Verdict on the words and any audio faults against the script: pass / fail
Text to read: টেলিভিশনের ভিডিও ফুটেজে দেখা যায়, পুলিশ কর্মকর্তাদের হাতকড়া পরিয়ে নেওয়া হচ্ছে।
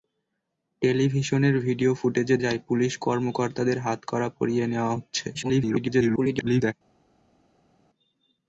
fail